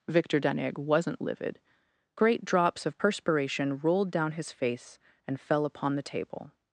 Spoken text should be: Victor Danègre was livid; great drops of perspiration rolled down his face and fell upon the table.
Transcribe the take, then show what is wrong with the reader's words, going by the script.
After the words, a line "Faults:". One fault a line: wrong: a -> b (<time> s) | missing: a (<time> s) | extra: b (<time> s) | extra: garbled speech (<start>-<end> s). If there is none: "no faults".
Victor Danègre wasn't livid; great drops of perspiration rolled down his face and fell upon the table.
Faults:
wrong: was -> wasn't (0.8 s)